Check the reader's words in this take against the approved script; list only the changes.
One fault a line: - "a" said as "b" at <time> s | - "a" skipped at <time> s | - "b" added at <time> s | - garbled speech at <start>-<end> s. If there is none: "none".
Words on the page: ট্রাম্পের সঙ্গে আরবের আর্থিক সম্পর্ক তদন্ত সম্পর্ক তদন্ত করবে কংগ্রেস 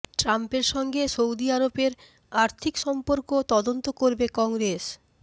- "সৌদি" added at 1.1 s
- "সম্পর্ক তদন্ত" skipped at 3.9 s